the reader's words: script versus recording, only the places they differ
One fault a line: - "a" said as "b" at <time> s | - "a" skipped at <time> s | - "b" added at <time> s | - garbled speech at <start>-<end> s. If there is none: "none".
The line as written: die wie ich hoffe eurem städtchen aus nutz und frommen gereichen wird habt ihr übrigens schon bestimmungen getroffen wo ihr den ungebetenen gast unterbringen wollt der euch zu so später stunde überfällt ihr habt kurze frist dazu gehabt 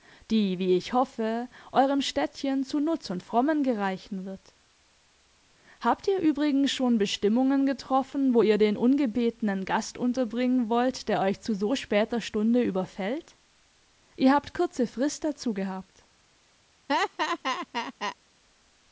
- "aus" said as "zu" at 2.6 s